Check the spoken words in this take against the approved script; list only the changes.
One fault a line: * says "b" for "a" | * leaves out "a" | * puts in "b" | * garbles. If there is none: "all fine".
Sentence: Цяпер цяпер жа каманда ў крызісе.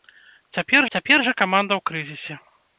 all fine